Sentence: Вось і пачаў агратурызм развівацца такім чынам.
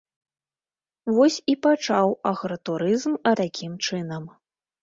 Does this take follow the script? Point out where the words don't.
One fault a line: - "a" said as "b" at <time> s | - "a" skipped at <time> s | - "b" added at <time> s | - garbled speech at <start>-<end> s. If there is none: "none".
- "развівацца" skipped at 3.1 s